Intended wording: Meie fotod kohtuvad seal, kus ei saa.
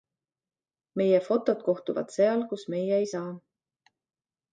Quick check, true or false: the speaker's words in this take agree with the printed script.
false